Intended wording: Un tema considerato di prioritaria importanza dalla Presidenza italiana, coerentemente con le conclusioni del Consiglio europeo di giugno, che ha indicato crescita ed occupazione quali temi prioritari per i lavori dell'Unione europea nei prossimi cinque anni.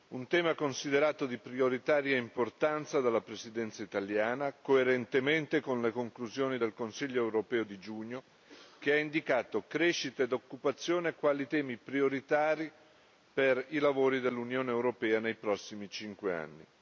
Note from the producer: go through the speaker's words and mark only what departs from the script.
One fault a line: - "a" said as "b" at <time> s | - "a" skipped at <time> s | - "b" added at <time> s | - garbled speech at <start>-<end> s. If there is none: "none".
none